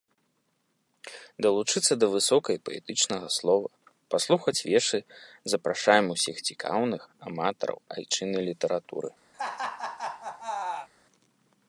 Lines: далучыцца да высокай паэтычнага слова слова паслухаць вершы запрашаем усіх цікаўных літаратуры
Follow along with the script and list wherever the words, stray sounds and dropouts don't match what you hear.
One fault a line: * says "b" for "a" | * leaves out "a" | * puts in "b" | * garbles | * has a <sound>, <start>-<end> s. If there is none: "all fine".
* leaves out "слова"
* puts in "аматараў айчыннай"
* has a laugh, 9.3-10.9 s